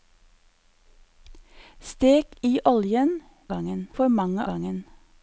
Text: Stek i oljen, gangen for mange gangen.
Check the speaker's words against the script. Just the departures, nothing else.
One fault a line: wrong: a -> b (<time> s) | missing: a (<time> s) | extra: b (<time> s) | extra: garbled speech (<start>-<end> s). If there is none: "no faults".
no faults